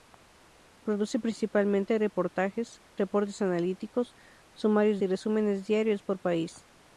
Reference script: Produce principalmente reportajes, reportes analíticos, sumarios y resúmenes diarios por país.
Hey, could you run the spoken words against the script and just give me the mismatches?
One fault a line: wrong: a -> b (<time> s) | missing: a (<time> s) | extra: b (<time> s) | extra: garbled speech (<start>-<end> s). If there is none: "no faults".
no faults